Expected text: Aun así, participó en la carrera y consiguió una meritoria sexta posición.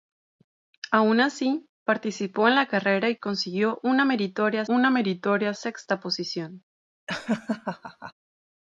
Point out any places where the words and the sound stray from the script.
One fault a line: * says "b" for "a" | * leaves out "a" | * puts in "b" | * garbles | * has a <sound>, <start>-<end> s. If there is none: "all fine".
* puts in "una meritoria"
* has a laugh, 7.1-8.1 s